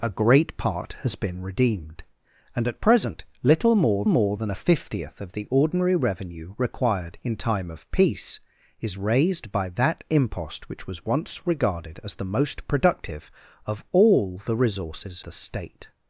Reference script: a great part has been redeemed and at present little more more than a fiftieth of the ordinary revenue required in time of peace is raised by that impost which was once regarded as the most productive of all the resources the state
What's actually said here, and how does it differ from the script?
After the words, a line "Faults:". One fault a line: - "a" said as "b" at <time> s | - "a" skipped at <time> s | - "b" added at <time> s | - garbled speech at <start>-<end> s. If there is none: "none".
a great part has been redeemed and at present little more more than a fiftieth of the ordinary revenue required in time of peace is raised by that impost which was once regarded as the most productive of all the resources the state
Faults:
none